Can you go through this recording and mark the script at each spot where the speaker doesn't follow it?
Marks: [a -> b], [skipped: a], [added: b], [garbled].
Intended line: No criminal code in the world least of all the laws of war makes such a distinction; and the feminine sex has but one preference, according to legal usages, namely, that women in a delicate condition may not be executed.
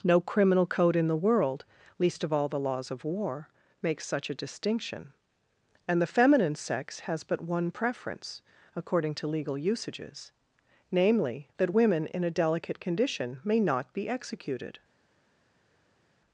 No criminal code in the world least of all the laws of war makes such a distinction; and the feminine sex has but one preference, according to legal usages, namely, that women in a delicate condition may not be executed.